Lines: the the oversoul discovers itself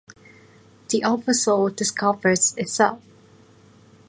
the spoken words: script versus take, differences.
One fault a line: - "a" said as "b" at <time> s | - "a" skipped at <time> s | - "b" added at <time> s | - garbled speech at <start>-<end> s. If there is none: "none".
- "the" skipped at 1.0 s